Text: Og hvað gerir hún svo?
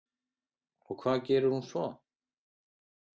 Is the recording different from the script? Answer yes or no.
no